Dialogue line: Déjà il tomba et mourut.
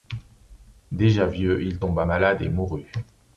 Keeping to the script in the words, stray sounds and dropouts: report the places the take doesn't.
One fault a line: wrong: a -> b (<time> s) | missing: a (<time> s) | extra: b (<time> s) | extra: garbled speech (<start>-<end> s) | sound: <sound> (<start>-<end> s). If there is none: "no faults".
extra: vieux (1.3 s)
extra: malade (2.0 s)